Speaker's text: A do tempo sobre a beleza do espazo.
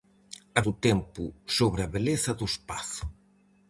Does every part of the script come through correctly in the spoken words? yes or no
yes